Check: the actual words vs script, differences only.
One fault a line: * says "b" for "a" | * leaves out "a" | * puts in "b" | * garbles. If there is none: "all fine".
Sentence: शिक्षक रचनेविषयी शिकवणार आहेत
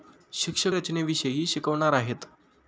all fine